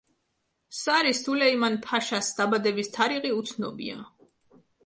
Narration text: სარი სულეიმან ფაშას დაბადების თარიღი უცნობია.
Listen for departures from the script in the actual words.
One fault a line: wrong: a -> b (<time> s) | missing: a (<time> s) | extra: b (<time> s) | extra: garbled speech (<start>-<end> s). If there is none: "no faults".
no faults